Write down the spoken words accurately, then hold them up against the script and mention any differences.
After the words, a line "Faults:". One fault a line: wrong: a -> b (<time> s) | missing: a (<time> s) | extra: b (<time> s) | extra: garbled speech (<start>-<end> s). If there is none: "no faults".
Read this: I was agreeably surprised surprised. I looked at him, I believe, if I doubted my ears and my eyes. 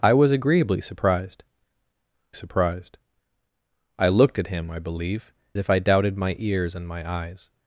I was agreeably surprised surprised. I looked at him, I believe, if I doubted my ears and my eyes.
Faults:
no faults